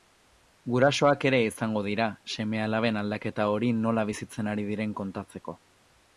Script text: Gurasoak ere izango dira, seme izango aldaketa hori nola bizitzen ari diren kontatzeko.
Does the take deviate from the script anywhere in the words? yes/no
yes